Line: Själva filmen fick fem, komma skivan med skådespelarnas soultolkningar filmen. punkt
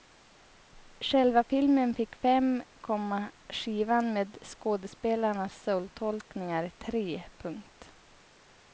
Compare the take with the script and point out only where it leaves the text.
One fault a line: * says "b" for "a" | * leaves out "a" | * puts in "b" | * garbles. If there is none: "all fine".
* says "tre" for "filmen"